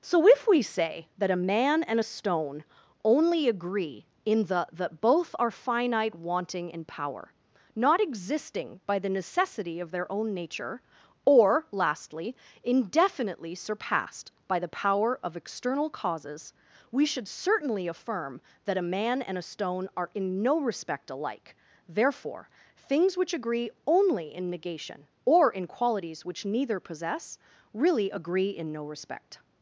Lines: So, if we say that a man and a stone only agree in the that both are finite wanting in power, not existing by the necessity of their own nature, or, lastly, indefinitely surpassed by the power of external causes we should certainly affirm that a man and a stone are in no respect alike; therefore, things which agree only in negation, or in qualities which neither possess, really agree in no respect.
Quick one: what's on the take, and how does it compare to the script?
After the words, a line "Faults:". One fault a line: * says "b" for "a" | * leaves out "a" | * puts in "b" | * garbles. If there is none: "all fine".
So, if we say that a man and a stone only agree in the that both are finite wanting in power, not existing by the necessity of their own nature, or, lastly, indefinitely surpassed by the power of external causes we should certainly affirm that a man and a stone are in no respect alike; therefore, things which agree only in negation, or in qualities which neither possess, really agree in no respect.
Faults:
all fine